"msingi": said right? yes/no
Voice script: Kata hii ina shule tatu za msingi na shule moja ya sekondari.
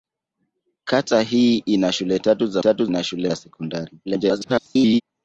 no